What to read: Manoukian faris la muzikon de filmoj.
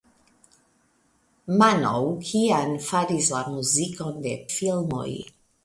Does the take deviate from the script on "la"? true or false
false